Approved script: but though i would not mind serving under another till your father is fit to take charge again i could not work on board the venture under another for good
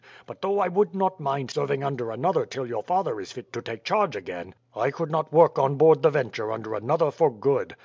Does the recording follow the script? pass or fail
pass